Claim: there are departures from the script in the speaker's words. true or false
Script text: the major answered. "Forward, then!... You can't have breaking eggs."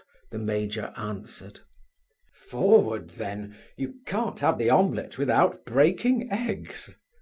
true